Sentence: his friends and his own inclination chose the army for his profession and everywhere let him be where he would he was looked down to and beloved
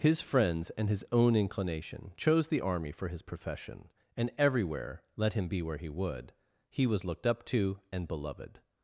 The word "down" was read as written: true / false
false